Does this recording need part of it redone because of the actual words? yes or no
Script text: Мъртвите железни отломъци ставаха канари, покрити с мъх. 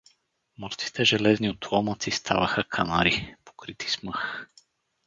no